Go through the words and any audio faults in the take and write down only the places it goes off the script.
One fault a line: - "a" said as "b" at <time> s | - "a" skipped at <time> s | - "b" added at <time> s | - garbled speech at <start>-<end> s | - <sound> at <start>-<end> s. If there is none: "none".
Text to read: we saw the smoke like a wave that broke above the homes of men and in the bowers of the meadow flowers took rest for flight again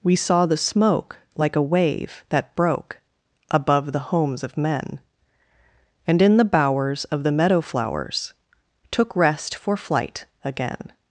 none